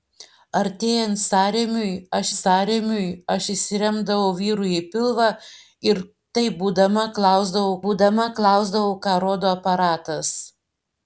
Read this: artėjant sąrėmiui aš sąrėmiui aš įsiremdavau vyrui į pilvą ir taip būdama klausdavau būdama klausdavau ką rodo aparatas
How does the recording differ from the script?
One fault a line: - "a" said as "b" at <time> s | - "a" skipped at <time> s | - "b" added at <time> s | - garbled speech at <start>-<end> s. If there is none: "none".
none